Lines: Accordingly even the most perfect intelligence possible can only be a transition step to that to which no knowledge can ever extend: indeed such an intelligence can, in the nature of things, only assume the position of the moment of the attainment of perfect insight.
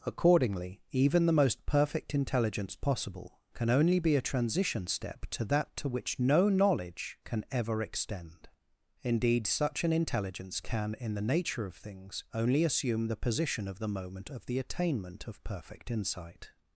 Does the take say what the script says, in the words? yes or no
yes